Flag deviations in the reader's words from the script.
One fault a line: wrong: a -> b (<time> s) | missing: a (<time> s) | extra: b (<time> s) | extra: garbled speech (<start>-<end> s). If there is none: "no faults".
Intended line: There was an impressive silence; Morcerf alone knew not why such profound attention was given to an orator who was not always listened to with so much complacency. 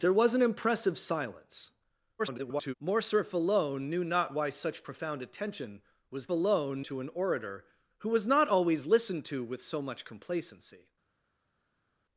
extra: garbled speech (2.2-2.7 s)
wrong: given -> alone (6.3 s)